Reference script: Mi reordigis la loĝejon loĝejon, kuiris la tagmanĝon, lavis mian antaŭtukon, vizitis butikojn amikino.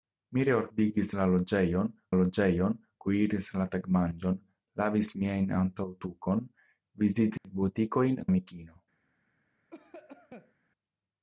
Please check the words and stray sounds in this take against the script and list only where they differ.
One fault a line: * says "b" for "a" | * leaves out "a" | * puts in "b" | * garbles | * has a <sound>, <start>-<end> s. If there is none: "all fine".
* has a dropout, 7.4-7.4 s
* has a cough, 9.7-10.5 s